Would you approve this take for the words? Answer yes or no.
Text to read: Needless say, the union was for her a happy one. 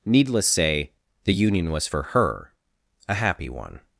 yes